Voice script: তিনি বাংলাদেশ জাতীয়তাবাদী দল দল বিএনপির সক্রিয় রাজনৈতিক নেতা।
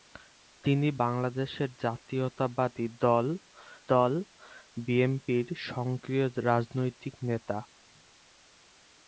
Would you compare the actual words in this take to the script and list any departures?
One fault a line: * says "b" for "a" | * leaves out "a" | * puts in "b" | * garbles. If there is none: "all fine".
all fine